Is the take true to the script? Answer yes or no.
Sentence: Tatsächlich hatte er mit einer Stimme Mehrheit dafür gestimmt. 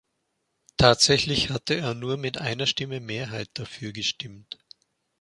no